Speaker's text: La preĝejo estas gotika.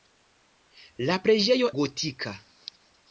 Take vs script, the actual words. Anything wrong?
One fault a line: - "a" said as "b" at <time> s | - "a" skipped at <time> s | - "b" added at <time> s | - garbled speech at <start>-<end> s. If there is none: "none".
- "estas" skipped at 1.7 s